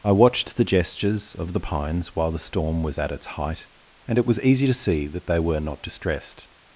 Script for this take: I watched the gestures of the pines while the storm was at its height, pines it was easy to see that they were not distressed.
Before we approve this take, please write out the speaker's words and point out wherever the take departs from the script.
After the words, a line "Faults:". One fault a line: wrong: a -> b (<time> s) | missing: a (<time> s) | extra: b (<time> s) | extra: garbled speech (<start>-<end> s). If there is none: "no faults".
I watched the gestures of the pines while the storm was at its height, and it was easy to see that they were not distressed.
Faults:
wrong: pines -> and (4.1 s)